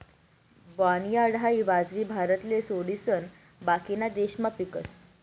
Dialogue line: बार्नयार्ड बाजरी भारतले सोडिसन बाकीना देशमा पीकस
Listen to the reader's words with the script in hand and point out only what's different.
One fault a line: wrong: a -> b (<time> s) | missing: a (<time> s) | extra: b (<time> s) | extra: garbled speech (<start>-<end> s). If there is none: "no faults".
extra: हाई (1.4 s)